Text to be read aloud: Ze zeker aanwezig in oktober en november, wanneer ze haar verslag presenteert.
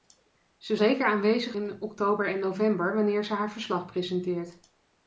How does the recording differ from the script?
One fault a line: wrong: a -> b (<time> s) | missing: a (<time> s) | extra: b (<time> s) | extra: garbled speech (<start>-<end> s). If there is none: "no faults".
no faults